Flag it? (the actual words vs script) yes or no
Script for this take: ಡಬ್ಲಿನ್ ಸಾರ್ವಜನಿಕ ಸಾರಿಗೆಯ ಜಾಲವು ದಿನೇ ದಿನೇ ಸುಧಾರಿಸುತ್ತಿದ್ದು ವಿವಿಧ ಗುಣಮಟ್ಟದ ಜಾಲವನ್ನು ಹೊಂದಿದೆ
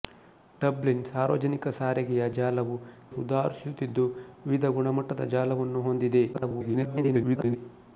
yes